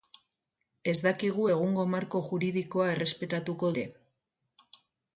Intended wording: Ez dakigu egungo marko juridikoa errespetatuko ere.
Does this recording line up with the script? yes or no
yes